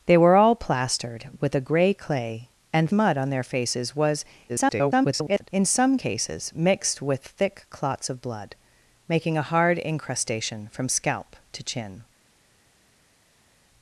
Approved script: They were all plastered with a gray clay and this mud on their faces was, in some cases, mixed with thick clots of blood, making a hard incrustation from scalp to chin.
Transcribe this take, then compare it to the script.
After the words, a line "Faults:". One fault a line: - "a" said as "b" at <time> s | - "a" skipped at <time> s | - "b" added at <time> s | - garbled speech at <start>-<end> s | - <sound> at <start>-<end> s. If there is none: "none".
They were all plastered with a gray clay and mud on their faces was, [garbled] in some cases, mixed with thick clots of blood, making a hard incrustation from scalp to chin.
Faults:
- "this" skipped at 2.9 s
- garbled speech at 4.5-5.5 s